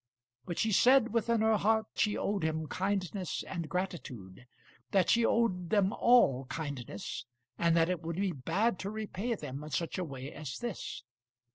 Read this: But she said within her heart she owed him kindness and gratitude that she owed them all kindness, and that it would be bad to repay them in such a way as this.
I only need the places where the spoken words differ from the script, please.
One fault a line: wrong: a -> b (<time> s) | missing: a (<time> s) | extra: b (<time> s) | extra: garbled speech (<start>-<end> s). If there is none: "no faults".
no faults